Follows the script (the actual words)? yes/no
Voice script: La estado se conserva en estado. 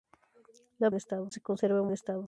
yes